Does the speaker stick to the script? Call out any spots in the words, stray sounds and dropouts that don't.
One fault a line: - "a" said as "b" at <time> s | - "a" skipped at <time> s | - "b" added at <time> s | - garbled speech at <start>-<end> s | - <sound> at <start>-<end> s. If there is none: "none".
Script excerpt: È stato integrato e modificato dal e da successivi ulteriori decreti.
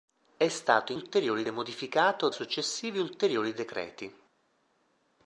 - "integrato" said as "ulteriori" at 0.9 s
- "dal e da" skipped at 2.3 s